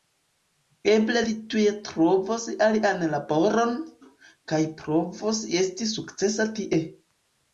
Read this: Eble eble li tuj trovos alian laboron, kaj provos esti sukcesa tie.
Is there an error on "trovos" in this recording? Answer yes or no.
no